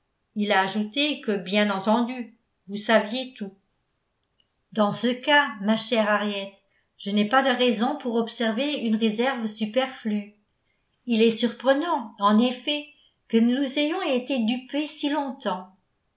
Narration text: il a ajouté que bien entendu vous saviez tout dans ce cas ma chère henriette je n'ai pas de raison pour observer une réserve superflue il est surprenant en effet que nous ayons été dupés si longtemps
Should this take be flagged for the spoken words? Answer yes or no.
no